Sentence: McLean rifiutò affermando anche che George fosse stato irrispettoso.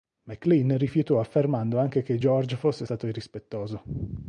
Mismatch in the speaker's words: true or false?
false